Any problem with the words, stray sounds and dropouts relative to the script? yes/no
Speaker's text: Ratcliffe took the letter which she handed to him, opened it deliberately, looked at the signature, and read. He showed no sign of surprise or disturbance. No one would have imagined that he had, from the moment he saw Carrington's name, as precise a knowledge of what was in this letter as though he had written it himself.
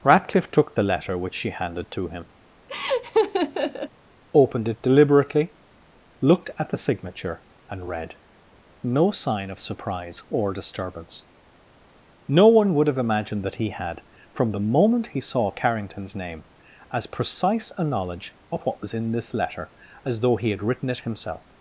yes